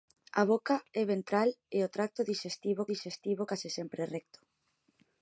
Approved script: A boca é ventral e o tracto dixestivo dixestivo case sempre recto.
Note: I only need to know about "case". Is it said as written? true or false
true